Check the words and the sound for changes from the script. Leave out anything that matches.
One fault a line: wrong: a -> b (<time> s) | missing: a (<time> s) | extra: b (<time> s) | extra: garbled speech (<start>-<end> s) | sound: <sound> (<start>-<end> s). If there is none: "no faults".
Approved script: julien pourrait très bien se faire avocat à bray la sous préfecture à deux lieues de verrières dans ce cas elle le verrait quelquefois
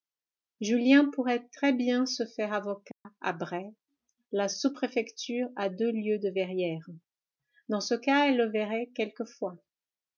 sound: dropout (2.9-3.1 s)